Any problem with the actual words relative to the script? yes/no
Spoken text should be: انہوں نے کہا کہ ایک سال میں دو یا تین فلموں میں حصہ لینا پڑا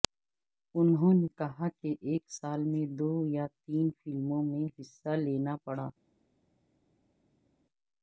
no